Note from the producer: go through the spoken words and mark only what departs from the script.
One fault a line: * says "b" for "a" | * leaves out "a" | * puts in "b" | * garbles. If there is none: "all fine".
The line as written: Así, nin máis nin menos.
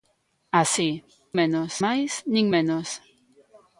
* says "menos" for "nin"